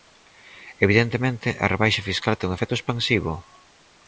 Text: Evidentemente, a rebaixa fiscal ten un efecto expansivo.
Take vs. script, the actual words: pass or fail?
pass